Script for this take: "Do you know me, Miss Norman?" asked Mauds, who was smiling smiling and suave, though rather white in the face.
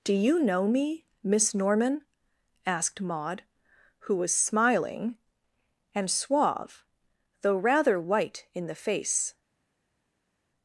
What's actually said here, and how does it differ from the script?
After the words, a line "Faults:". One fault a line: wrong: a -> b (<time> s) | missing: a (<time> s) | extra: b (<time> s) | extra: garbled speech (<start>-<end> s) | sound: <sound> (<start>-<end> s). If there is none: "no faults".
"Do you know me, Miss Norman?" asked Maud, who was smiling and suave, though rather white in the face.
Faults:
wrong: Mauds -> Maud (3.0 s)
missing: smiling (5.2 s)